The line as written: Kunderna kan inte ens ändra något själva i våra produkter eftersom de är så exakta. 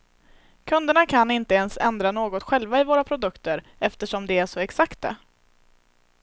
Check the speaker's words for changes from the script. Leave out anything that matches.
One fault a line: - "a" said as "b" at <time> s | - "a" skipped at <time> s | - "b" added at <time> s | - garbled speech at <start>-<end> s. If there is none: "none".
none